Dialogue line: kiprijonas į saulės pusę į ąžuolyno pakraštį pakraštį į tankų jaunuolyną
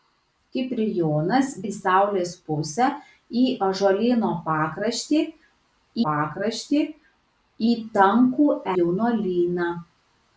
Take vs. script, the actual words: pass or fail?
pass